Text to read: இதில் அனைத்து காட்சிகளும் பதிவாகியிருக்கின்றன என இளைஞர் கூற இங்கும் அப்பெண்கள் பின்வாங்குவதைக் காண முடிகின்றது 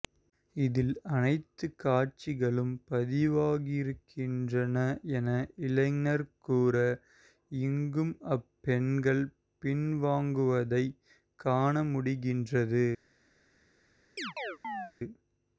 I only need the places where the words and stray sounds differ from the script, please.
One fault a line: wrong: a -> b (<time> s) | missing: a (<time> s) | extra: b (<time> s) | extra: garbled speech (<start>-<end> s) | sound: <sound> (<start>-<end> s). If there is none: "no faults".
sound: chirp (14.2-14.9 s)